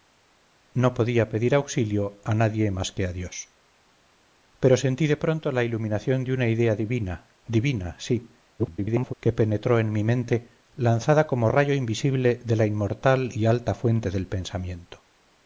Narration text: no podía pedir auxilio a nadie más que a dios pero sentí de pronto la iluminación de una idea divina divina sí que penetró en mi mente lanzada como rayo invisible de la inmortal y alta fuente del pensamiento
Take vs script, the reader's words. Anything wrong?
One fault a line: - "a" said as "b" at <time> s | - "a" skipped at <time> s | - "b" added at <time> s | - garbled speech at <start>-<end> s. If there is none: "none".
- garbled speech at 8.6-9.1 s